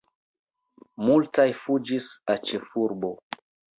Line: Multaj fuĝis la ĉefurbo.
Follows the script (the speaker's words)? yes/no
yes